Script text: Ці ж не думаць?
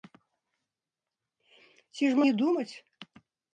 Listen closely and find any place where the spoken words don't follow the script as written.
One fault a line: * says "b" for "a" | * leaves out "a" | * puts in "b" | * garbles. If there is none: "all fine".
all fine